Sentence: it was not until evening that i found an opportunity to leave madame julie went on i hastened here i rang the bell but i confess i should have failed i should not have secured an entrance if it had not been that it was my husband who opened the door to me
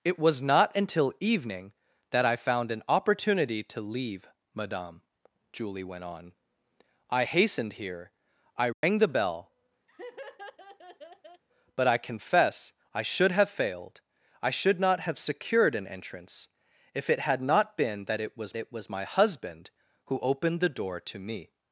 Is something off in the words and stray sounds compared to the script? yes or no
yes